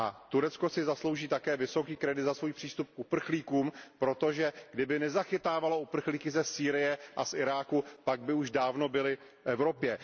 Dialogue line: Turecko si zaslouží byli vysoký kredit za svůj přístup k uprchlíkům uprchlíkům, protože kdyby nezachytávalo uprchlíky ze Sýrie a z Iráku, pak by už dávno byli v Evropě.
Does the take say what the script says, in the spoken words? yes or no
no